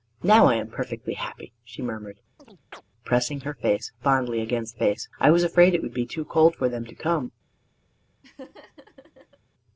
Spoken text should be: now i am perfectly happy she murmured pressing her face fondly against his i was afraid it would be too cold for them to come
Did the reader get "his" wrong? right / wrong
wrong